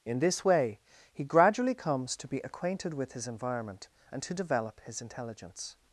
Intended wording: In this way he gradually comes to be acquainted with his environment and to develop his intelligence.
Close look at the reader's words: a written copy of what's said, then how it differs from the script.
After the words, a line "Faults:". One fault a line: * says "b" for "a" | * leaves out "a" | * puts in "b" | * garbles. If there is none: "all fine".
In this way he gradually comes to be acquainted with his environment and to develop his intelligence.
Faults:
all fine